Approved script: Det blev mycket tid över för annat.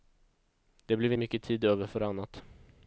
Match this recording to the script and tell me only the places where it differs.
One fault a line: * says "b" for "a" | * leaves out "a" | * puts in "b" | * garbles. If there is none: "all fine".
all fine